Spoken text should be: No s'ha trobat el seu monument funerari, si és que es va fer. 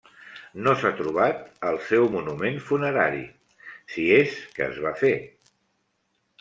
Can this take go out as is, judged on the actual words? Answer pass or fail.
pass